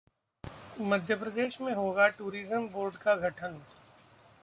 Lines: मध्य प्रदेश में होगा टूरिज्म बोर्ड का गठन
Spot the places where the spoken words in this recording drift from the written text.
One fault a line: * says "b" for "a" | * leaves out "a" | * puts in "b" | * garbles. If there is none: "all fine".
all fine